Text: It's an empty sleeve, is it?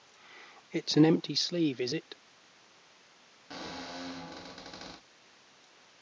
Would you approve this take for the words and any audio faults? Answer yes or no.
no